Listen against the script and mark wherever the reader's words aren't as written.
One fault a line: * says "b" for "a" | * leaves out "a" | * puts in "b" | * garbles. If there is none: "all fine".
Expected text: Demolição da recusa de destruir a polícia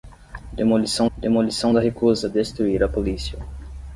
* puts in "demolição"
* leaves out "de"